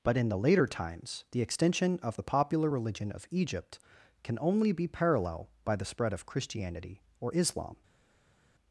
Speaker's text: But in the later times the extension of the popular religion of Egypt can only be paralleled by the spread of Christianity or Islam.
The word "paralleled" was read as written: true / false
false